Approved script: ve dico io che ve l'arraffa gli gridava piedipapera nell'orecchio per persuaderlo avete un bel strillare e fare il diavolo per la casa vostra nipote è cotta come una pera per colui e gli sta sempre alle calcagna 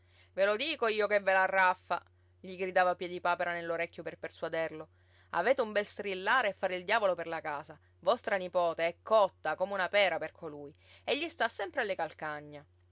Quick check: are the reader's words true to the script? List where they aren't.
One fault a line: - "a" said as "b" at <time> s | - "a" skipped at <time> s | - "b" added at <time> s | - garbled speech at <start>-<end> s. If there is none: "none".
- "lo" added at 0.5 s